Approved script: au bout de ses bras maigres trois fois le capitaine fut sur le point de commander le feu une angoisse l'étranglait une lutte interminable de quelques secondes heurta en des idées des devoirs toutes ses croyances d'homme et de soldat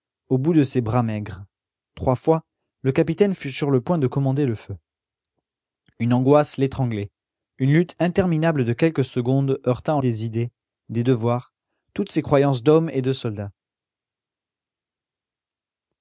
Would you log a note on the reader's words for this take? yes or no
no